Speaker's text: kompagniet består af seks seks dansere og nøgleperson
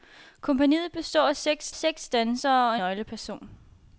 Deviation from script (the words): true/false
false